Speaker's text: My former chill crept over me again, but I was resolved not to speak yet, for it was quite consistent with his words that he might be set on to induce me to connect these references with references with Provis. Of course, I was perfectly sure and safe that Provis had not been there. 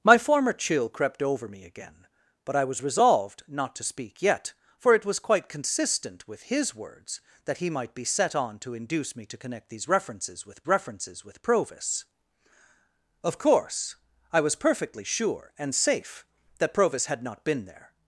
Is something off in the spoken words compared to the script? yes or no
no